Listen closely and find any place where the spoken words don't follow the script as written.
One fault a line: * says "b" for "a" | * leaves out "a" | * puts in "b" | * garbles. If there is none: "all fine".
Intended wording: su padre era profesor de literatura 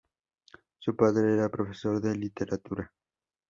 all fine